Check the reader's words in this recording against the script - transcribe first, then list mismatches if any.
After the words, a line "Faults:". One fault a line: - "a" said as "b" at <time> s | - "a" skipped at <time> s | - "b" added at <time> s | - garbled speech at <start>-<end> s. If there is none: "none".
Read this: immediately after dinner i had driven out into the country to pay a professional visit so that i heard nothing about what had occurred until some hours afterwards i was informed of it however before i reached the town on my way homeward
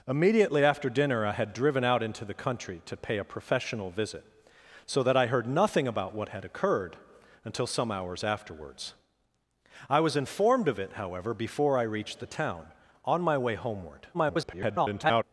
immediately after dinner i had driven out into the country to pay a professional visit so that i heard nothing about what had occurred until some hours afterwards i was informed of it however before i reached the town on my way homeward [garbled]
Faults:
- garbled speech at 14.1-15.2 s